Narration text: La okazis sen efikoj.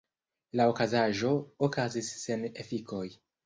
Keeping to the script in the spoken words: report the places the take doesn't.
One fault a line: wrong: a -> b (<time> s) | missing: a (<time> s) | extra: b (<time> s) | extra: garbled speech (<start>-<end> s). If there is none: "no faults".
extra: okazaĵo (0.7 s)